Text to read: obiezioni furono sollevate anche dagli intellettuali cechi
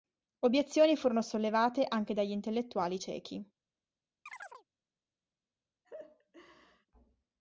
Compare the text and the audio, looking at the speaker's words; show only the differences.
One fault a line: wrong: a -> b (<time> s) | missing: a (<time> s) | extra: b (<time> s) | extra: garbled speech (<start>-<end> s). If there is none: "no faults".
no faults